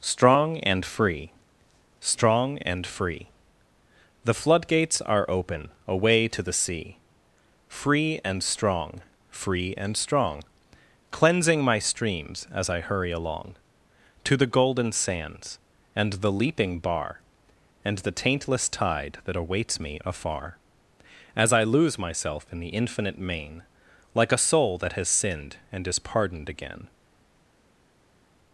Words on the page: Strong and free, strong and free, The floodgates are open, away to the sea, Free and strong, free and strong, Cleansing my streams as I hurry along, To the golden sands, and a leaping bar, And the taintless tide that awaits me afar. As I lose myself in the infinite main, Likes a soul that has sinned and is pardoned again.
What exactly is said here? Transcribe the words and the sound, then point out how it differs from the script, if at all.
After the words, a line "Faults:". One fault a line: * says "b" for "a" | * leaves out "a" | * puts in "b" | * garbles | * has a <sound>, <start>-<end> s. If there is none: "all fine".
Strong and free, strong and free, The floodgates are open, away to the sea, Free and strong, free and strong, Cleansing my streams as I hurry along, To the golden sands, and the leaping bar, And the taintless tide that awaits me afar. As I lose myself in the infinite main, Like a soul that has sinned and is pardoned again.
Faults:
* says "the" for "a"
* says "Like" for "Likes"